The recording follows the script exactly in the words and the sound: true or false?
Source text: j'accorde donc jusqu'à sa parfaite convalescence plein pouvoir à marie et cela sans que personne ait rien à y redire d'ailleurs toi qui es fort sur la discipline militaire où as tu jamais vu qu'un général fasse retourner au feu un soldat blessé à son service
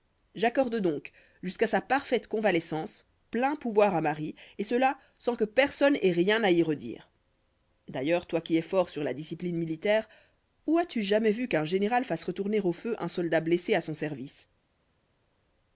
true